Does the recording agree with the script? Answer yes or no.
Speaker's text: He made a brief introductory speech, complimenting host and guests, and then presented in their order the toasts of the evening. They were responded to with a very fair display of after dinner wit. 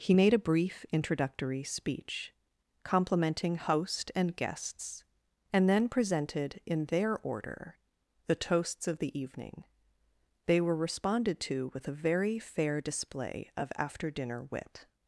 yes